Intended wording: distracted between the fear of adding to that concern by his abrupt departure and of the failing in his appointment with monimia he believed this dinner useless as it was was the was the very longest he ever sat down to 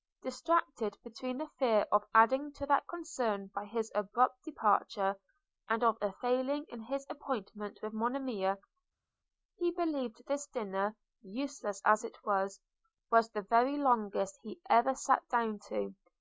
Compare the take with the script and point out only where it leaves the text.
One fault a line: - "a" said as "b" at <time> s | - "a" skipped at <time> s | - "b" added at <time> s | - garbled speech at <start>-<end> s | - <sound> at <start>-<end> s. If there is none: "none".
- "the" said as "a" at 6.0 s
- "was the" skipped at 13.4 s